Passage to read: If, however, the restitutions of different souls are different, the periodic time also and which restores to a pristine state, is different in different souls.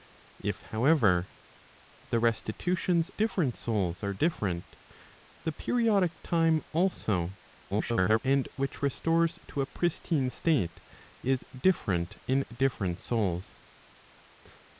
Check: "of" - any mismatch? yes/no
yes